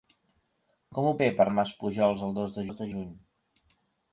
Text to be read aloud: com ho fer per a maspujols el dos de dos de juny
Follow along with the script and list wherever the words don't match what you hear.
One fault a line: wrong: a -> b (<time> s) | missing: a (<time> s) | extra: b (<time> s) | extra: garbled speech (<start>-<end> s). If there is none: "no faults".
no faults